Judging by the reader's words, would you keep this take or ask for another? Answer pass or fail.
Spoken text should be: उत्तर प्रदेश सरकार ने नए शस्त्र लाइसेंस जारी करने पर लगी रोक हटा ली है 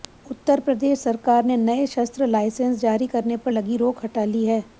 pass